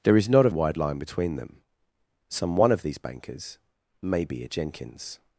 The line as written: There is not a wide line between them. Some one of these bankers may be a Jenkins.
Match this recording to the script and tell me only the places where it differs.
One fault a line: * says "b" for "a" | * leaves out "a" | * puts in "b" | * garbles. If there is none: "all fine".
all fine